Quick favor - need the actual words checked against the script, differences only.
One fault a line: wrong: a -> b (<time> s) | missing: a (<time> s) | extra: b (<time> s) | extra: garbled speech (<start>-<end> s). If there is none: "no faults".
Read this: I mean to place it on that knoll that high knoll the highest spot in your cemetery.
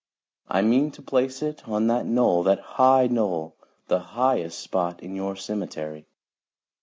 no faults